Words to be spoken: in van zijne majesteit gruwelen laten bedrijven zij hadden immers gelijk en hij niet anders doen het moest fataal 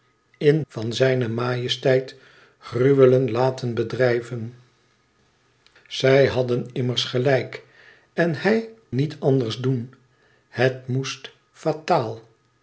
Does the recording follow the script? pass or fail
pass